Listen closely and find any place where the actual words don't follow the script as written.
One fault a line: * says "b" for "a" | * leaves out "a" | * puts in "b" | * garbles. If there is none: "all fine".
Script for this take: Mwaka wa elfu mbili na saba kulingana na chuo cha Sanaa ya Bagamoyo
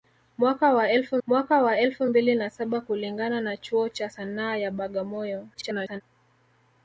* puts in "mwaka wa elfu"
* garbles